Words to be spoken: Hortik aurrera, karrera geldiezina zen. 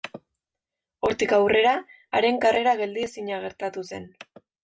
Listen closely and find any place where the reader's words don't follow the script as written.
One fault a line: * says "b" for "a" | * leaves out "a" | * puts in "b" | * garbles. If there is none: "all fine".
* puts in "haren"
* puts in "gertatu"